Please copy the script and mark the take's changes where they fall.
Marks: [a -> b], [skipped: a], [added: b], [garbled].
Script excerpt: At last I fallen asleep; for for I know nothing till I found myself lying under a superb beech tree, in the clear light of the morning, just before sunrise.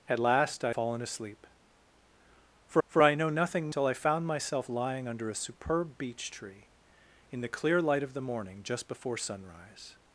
At last I fallen asleep; for for I know nothing till I found myself lying under a superb beech tree, in the clear light of the morning, just before sunrise.